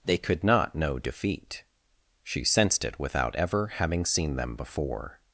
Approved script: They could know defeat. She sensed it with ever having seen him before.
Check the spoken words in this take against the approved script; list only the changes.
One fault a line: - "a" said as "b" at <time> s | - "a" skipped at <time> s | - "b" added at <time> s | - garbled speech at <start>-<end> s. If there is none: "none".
- "not" added at 0.4 s
- "with" said as "without" at 3.0 s
- "him" said as "them" at 4.4 s